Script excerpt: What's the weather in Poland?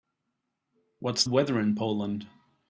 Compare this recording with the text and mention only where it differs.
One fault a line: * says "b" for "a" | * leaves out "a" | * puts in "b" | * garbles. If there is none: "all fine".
* leaves out "the"